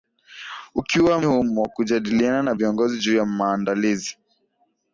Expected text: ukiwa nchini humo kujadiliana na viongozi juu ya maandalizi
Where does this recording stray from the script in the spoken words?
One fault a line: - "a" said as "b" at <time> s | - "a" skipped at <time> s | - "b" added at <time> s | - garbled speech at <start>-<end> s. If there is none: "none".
- "nchini" skipped at 1.2 s